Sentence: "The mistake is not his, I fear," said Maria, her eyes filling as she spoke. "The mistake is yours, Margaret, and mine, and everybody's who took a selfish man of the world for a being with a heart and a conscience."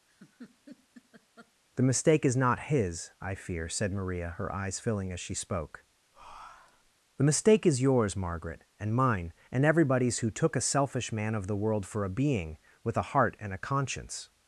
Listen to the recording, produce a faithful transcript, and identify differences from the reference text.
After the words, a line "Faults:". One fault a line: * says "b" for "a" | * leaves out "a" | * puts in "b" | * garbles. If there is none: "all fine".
"The mistake is not his, I fear," said Maria, her eyes filling as she spoke. "The mistake is yours, Margaret, and mine, and everybody's who took a selfish man of the world for a being with a heart and a conscience."
Faults:
all fine